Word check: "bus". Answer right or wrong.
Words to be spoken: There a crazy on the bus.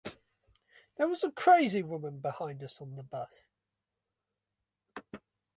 right